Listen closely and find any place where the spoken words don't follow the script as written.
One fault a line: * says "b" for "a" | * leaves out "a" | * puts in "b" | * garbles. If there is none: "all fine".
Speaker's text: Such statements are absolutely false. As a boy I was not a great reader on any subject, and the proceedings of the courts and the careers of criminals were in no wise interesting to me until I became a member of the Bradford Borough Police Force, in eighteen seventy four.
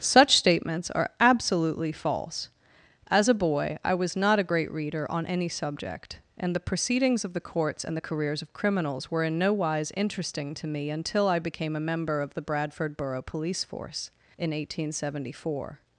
all fine